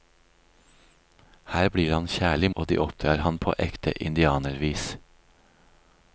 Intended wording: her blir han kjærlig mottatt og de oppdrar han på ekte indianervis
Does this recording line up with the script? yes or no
no